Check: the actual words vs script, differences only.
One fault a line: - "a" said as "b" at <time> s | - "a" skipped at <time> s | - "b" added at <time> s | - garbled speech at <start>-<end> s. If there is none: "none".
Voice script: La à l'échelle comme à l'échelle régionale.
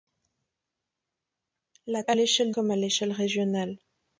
none